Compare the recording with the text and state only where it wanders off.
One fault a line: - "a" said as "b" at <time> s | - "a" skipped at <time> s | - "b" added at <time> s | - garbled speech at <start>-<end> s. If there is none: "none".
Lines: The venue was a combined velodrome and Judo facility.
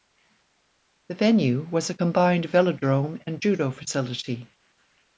none